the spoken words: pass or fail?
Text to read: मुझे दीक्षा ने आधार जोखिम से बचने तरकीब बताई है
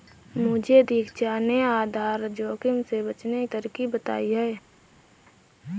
pass